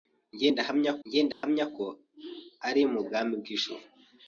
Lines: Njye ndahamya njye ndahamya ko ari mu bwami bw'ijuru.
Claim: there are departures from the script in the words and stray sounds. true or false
true